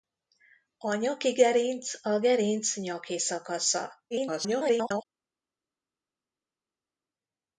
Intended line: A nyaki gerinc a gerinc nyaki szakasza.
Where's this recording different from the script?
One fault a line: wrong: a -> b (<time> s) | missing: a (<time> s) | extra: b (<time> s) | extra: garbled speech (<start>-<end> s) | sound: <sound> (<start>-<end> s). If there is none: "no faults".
extra: garbled speech (4.1-5.1 s)